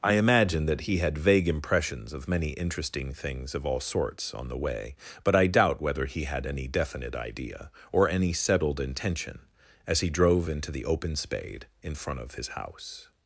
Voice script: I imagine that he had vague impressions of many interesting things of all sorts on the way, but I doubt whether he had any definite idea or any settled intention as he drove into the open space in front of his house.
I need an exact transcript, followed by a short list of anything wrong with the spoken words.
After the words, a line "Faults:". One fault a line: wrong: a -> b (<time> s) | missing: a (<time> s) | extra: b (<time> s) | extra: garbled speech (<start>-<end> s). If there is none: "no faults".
I imagine that he had vague impressions of many interesting things of all sorts on the way, but I doubt whether he had any definite idea or any settled intention as he drove into the open spade in front of his house.
Faults:
wrong: space -> spade (11.2 s)